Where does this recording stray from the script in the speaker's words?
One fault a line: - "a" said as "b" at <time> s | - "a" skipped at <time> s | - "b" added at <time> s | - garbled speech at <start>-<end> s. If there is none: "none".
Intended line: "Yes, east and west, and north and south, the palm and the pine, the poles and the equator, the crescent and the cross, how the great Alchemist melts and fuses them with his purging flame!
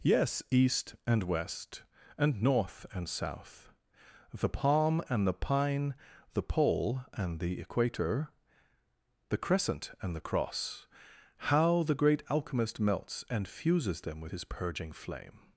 - "poles" said as "pole" at 6.4 s